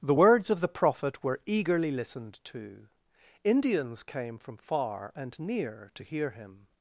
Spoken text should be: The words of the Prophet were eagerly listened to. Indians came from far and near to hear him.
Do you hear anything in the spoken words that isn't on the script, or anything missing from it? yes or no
no